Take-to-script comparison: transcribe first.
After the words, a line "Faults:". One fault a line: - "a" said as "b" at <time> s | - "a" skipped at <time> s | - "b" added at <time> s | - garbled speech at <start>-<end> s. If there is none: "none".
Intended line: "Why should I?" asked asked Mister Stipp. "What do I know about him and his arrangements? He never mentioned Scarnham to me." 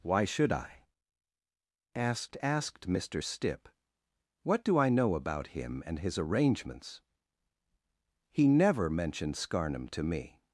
"Why should I?" asked asked Mister Stipp. "What do I know about him and his arrangements? He never mentioned Scarnham to me."
Faults:
none